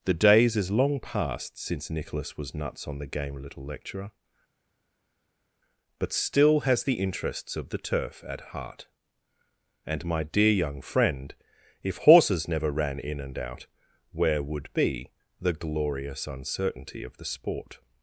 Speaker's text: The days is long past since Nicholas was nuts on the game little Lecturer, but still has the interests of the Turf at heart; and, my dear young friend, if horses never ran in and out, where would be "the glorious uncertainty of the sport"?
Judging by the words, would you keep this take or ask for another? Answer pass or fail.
pass